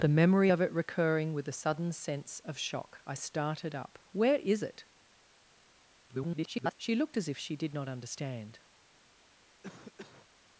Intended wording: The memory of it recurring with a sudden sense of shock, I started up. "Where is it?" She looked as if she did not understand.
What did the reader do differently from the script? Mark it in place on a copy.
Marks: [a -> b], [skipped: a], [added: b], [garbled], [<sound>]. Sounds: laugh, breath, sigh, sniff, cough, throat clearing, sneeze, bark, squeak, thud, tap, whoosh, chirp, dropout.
The memory of it recurring with a sudden sense of shock, I started up. "Where is it?" [garbled] She looked as if she did not understand. [cough]